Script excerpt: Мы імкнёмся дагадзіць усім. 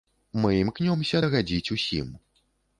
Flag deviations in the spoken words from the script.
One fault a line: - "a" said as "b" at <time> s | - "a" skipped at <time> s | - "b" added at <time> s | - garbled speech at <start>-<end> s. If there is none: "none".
none